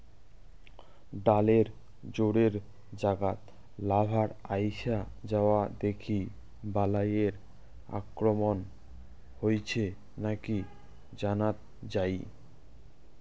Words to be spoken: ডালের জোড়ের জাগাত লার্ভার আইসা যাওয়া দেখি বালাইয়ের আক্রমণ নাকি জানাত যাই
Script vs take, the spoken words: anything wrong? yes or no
yes